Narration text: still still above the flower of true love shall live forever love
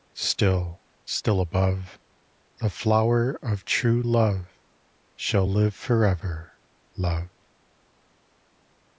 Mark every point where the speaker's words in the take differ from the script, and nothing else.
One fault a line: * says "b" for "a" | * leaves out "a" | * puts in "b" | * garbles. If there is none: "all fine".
all fine